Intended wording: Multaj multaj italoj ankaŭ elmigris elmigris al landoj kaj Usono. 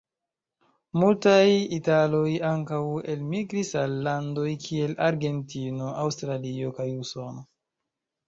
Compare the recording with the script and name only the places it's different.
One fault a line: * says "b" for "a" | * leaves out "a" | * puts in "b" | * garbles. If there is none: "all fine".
* leaves out "multaj"
* leaves out "elmigris"
* puts in "kiel Argentino Aŭstralio"